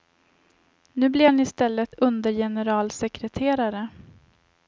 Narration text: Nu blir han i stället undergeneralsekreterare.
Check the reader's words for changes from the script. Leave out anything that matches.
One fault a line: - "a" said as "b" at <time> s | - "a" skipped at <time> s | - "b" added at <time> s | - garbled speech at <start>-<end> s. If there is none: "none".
none